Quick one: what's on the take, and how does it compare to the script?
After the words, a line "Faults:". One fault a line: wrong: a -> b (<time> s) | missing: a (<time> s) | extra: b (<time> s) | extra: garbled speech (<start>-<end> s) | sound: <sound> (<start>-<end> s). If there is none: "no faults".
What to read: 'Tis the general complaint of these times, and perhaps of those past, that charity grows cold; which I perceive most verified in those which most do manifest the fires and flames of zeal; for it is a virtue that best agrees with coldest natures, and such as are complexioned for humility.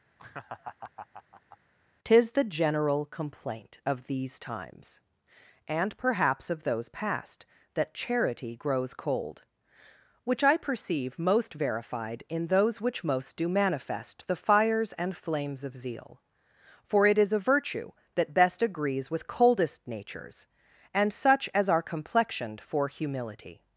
'Tis the general complaint of these times, and perhaps of those past, that charity grows cold; which I perceive most verified in those which most do manifest the fires and flames of zeal; for it is a virtue that best agrees with coldest natures, and such as are complexioned for humility.
Faults:
sound: laugh (0.2-1.6 s)